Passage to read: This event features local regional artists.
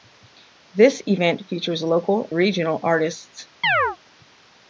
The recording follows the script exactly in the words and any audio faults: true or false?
false